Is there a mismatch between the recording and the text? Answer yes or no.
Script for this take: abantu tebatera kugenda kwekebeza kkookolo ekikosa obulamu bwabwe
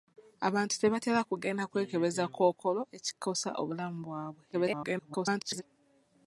yes